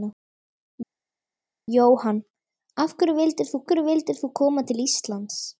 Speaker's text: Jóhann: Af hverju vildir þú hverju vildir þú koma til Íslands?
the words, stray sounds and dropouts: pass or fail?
pass